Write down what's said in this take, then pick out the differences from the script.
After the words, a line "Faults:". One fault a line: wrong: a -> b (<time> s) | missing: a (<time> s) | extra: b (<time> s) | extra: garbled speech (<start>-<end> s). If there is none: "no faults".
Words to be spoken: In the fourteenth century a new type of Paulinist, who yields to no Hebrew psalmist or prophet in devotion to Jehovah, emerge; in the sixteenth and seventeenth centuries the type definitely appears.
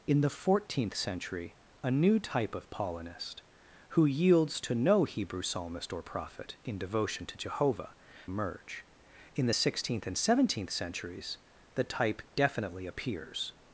In the fourteenth century a new type of Paulinist, who yields to no Hebrew psalmist or prophet in devotion to Jehovah, emerge; in the sixteenth and seventeenth centuries the type definitely appears.
Faults:
no faults